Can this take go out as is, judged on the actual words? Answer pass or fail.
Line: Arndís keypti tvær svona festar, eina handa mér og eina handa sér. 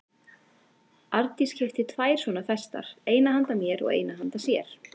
pass